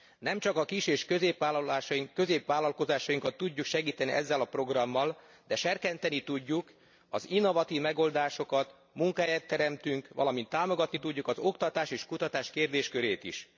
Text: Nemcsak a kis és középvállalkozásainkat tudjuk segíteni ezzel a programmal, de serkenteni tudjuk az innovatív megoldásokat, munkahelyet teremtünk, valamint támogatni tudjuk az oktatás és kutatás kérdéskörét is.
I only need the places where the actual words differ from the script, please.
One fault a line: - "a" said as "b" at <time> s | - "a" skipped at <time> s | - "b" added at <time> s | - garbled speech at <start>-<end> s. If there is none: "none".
none